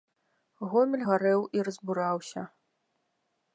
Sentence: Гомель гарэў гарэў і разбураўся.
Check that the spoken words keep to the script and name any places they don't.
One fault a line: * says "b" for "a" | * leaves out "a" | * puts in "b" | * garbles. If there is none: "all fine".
* leaves out "гарэў"